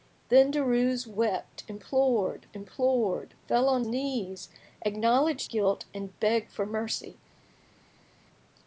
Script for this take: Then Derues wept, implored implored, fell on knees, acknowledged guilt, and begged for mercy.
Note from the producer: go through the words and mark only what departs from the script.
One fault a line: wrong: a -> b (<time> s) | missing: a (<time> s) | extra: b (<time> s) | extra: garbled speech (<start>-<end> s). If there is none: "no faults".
no faults